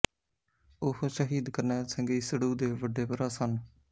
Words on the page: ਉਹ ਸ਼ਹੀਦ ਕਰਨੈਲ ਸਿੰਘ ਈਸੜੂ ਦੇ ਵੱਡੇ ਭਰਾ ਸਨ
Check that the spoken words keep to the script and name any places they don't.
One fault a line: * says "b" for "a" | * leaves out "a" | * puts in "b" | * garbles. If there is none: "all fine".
all fine